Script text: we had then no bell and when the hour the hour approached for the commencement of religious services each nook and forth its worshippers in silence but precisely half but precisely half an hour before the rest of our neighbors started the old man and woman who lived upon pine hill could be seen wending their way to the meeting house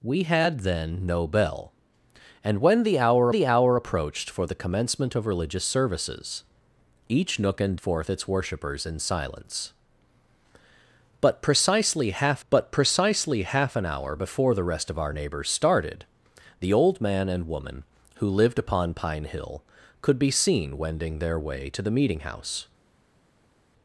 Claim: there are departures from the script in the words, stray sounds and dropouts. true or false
false